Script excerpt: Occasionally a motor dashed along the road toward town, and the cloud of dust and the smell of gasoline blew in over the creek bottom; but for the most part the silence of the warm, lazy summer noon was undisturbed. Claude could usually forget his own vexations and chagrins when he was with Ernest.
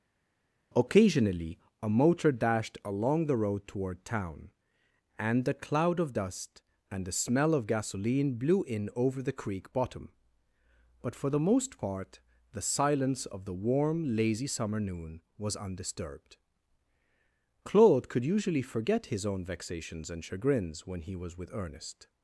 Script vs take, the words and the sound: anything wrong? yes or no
no